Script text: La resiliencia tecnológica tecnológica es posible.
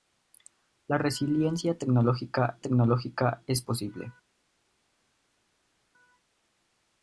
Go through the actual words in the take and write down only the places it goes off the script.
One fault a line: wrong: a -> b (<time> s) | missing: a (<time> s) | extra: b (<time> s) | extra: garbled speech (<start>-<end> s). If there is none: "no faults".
no faults